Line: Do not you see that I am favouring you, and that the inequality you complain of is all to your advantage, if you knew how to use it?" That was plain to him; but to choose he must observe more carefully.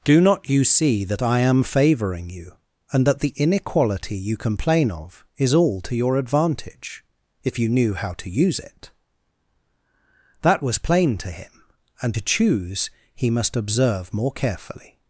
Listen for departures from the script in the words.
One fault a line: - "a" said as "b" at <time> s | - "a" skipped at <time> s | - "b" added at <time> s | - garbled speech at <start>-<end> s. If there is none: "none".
- "but" said as "and" at 12.0 s